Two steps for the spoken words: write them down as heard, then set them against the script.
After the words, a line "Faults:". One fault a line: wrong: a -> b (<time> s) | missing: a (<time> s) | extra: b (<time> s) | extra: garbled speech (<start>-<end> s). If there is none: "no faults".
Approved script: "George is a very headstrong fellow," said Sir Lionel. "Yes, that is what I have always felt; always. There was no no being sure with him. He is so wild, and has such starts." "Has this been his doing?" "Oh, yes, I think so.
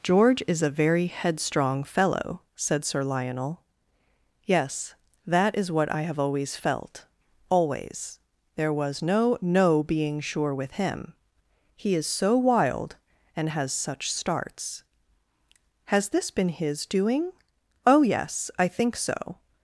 "George is a very headstrong fellow," said Sir Lionel. "Yes, that is what I have always felt; always. There was no no being sure with him. He is so wild, and has such starts." "Has this been his doing?" "Oh, yes, I think so.
Faults:
no faults